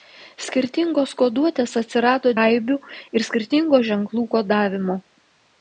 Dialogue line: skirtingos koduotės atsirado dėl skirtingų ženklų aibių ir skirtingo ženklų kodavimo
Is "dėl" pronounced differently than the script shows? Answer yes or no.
yes